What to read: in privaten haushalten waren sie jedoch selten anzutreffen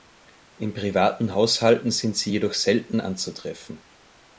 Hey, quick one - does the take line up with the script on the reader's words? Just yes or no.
no